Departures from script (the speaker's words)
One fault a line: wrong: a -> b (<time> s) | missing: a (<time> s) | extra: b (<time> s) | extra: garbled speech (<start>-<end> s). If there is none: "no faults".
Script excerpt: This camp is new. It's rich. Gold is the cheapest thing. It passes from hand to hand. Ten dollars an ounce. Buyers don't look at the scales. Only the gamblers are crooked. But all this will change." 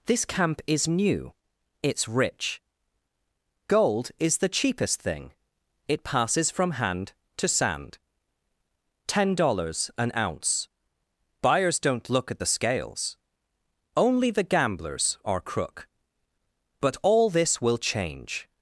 wrong: hand -> sand (7.5 s)
wrong: crooked -> crook (15.4 s)